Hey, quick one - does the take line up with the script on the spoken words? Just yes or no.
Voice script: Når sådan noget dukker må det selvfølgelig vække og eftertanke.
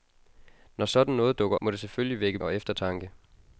yes